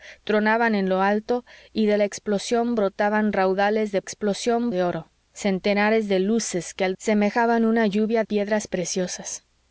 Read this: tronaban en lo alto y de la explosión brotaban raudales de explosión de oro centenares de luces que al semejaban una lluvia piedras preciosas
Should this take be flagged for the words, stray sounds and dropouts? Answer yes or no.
no